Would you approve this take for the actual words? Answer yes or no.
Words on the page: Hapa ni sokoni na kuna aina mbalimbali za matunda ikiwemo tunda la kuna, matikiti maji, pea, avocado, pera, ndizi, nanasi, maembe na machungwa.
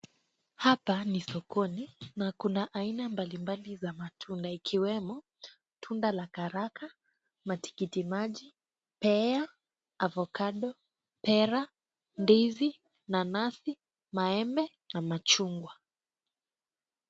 no